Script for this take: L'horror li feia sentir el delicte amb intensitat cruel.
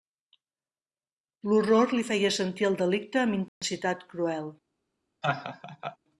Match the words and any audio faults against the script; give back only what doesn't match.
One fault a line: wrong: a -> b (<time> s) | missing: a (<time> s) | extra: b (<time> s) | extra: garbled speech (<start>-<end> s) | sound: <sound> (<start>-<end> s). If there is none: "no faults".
sound: dropout (3.5-3.6 s)
sound: laugh (5.2-6.0 s)